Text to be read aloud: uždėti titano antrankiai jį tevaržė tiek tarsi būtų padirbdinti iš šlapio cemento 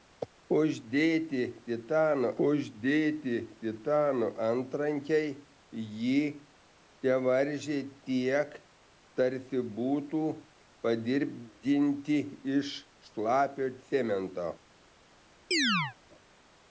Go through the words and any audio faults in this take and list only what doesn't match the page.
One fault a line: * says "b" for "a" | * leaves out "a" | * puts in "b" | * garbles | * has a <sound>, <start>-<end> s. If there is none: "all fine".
* puts in "uždėti titano"
* has a chirp, 15.5-16.0 s